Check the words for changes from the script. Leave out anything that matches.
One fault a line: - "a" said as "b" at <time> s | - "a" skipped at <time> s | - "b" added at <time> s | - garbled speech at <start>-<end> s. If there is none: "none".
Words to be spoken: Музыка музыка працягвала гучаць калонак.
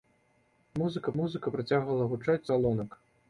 none